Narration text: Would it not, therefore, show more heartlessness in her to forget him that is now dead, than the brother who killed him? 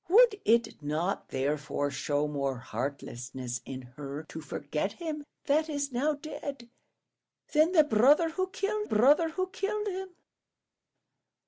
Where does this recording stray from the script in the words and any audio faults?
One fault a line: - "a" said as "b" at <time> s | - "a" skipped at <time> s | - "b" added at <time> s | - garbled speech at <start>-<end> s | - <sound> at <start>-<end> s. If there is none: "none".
- "brother who killed" added at 8.8 s